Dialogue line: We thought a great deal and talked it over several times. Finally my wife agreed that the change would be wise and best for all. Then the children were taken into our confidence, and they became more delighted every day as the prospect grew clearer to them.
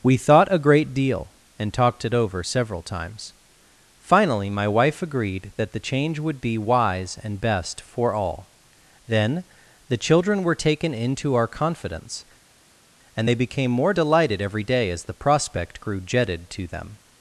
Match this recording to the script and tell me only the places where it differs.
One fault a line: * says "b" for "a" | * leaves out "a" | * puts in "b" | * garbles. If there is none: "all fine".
* says "jetted" for "clearer"